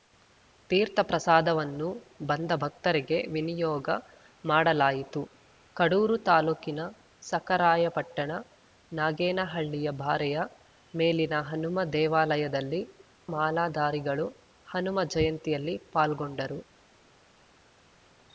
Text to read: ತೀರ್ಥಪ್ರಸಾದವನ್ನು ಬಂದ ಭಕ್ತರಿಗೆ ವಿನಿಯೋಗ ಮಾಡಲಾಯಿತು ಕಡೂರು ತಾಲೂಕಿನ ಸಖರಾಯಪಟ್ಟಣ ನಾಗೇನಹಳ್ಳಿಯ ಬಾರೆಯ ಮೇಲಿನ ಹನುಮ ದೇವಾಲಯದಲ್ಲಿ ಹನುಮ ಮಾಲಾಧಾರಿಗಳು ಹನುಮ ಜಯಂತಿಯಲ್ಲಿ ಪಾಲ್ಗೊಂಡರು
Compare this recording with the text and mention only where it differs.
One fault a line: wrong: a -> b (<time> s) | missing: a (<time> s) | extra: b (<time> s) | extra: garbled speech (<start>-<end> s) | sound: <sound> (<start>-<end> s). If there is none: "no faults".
missing: ಹನುಮ (12.8 s)